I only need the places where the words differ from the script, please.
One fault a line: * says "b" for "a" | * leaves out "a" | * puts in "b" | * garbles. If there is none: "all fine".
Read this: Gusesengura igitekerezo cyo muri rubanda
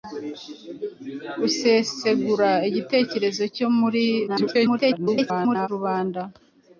* garbles